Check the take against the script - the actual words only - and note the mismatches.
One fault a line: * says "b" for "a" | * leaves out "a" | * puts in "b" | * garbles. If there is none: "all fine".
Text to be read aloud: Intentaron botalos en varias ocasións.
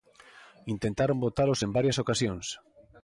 all fine